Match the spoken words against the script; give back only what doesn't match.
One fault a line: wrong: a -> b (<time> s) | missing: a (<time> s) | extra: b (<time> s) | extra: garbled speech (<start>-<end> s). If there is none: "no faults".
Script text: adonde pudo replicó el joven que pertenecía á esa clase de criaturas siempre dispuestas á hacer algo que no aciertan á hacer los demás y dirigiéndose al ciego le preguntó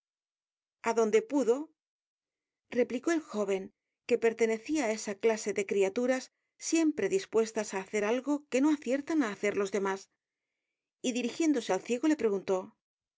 no faults